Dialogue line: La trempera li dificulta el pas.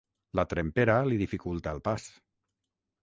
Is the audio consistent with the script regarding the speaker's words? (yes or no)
yes